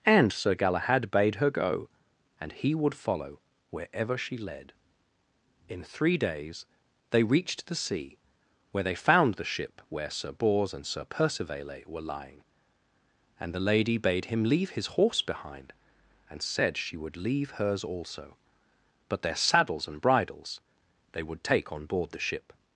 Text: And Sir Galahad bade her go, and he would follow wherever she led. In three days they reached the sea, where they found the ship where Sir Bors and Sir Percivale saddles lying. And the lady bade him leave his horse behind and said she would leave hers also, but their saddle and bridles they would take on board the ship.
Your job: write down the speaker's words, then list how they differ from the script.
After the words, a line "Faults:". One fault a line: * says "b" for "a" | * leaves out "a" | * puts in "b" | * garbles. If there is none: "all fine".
And Sir Galahad bade her go, and he would follow wherever she led. In three days they reached the sea, where they found the ship where Sir Bors and Sir Percivale were lying. And the lady bade him leave his horse behind and said she would leave hers also, but their saddles and bridles they would take on board the ship.
Faults:
* says "were" for "saddles"
* says "saddles" for "saddle"